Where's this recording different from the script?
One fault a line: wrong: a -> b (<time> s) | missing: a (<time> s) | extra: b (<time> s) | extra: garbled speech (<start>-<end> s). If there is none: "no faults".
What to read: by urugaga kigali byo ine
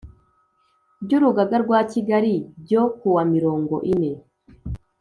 extra: rwa (1.6 s)
extra: kuwa mirongo (3.0 s)